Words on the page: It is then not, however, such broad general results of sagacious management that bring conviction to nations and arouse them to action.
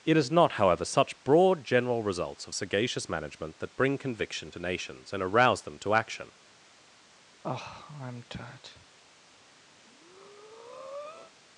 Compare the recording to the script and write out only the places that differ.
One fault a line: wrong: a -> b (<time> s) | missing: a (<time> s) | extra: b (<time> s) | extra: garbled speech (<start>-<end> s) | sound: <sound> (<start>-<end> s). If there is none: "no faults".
missing: then (0.3 s)
sound: sigh (7.4-8.9 s)
sound: breath (9.8-11.3 s)